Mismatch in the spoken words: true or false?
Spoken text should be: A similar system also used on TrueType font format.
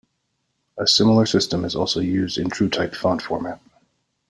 true